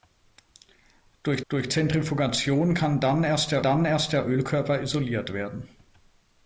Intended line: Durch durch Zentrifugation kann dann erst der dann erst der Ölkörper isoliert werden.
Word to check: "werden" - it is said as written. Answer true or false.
true